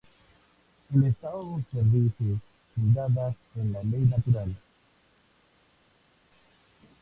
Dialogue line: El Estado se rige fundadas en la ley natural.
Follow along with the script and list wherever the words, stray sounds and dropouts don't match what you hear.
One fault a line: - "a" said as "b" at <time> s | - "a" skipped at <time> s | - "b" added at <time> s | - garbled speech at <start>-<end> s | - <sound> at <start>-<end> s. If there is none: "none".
none